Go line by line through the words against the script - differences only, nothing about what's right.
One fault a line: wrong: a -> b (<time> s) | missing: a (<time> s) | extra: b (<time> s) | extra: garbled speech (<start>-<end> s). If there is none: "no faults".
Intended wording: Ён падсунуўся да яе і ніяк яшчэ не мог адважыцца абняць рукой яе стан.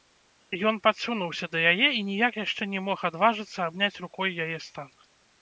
no faults